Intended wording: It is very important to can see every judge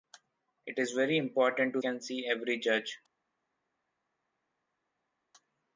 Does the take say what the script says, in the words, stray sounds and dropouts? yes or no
yes